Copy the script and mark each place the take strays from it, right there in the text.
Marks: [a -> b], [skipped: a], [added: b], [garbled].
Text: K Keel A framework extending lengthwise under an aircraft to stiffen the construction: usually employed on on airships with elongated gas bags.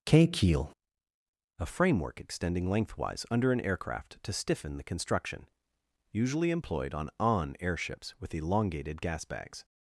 K Keel A framework extending lengthwise under an aircraft to stiffen the construction: usually employed on on airships with elongated gas bags.